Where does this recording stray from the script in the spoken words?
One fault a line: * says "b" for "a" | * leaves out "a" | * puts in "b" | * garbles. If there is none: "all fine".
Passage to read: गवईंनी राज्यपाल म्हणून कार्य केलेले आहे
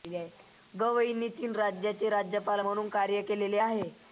* puts in "तीन राज्यांचे"